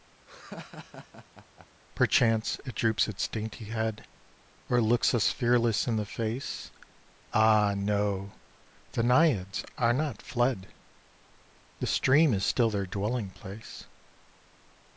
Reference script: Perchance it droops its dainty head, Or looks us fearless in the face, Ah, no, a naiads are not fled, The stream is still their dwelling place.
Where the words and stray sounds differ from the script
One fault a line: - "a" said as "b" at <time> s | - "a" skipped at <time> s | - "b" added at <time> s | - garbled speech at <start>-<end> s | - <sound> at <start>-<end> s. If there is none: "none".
- laugh at 0.3-1.7 s
- "a" said as "the" at 8.9 s